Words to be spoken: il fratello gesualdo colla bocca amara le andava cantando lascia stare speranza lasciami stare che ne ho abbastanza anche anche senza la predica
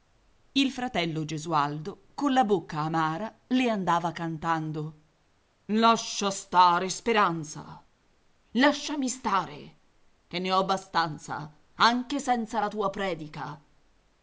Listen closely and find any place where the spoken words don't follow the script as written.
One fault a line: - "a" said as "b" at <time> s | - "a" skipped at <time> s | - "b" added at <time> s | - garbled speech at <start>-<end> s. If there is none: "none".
- "anche" skipped at 12.2 s
- "tua" added at 12.7 s